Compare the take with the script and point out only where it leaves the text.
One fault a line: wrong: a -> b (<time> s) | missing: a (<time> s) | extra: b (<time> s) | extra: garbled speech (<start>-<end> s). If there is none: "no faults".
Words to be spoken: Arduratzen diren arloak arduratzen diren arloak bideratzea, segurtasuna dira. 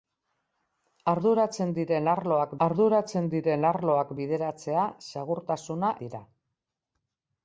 no faults